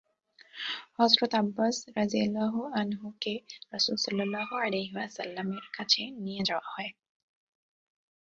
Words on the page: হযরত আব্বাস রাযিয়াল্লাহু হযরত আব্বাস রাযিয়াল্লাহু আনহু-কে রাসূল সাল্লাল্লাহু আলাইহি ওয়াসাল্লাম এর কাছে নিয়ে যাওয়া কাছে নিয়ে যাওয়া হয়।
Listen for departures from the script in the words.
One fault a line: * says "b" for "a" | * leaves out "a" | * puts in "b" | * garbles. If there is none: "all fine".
* leaves out "হযরত আব্বাস রাযিয়াল্লাহু"
* leaves out "কাছে নিয়ে যাওয়া"